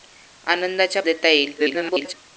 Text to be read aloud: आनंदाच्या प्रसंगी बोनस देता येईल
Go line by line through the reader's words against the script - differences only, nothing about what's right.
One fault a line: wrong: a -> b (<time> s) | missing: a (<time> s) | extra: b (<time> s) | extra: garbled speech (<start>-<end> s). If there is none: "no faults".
missing: प्रसंगी बोनस (1.0 s)
extra: garbled speech (1.6-2.1 s)